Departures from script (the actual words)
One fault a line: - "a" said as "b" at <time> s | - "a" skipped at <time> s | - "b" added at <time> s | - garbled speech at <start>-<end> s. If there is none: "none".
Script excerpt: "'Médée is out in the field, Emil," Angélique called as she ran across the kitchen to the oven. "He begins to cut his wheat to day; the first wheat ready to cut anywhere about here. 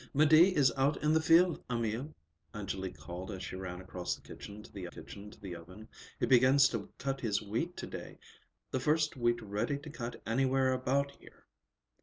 - "kitchen to the" added at 4.9 s